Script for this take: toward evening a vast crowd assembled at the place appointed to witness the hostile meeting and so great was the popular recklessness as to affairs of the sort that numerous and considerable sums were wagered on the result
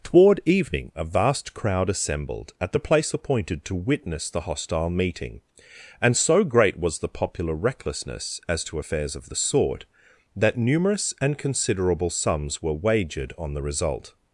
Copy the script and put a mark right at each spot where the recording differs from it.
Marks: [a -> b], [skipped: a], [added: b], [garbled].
toward evening a vast crowd assembled at the place appointed to witness the hostile meeting and so great was the popular recklessness as to affairs of the sort that numerous and considerable sums were wagered on the result